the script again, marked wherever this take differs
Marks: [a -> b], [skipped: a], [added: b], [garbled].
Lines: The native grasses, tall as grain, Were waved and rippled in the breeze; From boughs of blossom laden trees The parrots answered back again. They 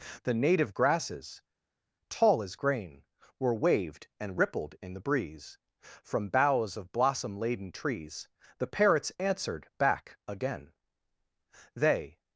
The native grasses, tall as grain, Were waved and rippled in the breeze; From boughs of blossom laden trees The parrots answered back again. They